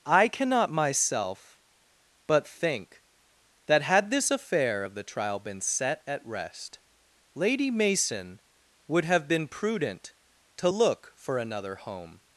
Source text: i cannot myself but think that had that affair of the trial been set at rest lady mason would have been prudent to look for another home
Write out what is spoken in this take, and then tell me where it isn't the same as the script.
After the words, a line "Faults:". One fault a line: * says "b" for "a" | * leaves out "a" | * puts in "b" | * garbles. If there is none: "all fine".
i cannot myself but think that had this affair of the trial been set at rest lady mason would have been prudent to look for another home
Faults:
* says "this" for "that"